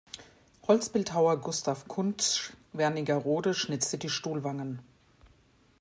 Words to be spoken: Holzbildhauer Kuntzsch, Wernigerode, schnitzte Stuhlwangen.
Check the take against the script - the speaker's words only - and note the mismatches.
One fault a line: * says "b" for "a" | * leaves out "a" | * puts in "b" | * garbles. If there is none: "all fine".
* puts in "Gustav"
* puts in "die"